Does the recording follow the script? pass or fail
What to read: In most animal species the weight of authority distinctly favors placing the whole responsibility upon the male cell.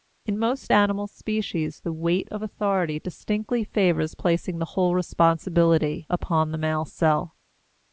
pass